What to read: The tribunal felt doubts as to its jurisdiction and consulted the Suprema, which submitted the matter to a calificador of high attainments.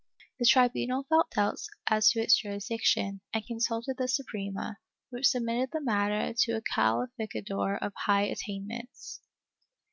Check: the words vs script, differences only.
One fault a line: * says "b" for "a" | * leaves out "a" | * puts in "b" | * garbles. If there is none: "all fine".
all fine